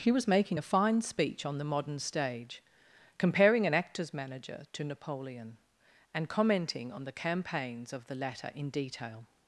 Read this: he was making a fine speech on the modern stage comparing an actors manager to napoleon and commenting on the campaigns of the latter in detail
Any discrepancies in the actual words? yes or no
no